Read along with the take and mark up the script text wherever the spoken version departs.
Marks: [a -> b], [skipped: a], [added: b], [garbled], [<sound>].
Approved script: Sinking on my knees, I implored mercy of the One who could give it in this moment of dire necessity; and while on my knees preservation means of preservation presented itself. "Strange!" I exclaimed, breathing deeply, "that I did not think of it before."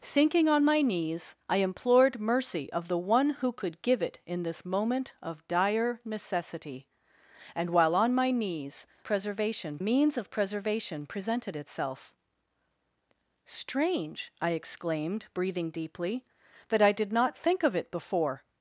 Sinking on my knees, I implored mercy of the One who could give it in this moment of dire necessity; and while on my knees preservation means of preservation presented itself. "Strange!" I exclaimed, breathing deeply, "that I did not think of it before."